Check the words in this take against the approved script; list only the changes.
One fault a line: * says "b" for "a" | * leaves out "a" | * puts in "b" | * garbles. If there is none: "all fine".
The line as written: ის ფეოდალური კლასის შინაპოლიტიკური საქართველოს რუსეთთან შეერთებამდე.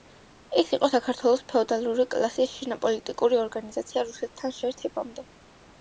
* puts in "იყო საქართველოს"
* says "ორგანიზაცია" for "საქართველოს"